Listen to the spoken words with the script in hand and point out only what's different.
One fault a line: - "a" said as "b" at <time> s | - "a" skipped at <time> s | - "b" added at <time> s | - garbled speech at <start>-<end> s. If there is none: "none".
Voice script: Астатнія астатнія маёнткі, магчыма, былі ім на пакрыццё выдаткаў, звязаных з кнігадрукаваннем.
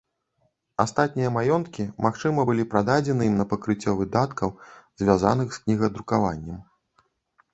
- "астатнія" skipped at 1.3 s
- "прададзены" added at 2.7 s